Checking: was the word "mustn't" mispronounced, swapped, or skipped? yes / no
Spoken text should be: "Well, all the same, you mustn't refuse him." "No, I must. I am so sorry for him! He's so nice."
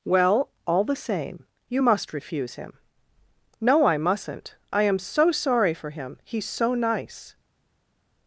yes